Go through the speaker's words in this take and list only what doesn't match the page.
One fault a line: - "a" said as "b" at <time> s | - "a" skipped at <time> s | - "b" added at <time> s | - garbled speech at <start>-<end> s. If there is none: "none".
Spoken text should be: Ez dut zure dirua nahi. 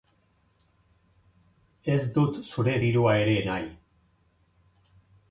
- "ere" added at 3.2 s